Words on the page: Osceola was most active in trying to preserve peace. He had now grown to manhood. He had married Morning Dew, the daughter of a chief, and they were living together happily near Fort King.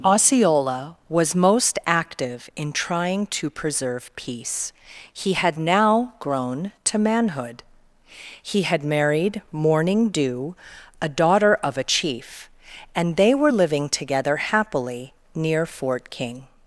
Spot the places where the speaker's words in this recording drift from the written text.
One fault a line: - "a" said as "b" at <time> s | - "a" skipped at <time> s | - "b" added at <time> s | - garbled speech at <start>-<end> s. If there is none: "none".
- "the" said as "a" at 11.0 s